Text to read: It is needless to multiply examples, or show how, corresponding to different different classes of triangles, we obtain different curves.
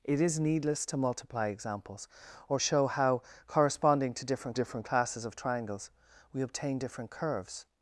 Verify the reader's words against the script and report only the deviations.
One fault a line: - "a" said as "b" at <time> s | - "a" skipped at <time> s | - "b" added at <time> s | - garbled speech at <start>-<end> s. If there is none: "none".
none